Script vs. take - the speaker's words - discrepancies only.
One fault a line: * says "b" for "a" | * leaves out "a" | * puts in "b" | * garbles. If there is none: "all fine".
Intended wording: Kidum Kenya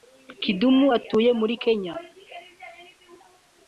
* puts in "utuye muri"